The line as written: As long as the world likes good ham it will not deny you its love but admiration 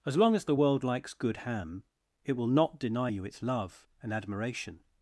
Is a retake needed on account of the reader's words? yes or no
yes